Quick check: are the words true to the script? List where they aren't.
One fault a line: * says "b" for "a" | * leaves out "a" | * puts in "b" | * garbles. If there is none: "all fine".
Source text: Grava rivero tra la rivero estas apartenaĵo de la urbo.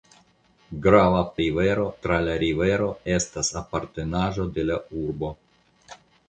all fine